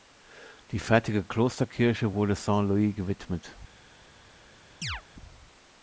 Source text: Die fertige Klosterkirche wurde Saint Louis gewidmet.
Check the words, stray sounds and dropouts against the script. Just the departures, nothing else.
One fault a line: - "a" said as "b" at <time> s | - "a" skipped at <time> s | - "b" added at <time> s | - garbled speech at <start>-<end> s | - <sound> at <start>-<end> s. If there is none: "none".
- chirp at 4.8-5.0 s